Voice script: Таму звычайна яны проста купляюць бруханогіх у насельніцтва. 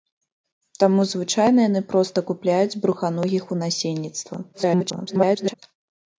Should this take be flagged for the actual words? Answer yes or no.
yes